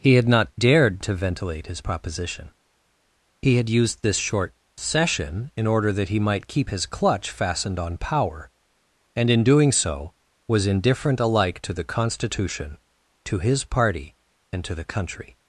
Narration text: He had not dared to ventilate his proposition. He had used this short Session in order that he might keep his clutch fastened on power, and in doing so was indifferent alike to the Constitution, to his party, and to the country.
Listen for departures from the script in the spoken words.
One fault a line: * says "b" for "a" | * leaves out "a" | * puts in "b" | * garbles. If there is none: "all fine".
all fine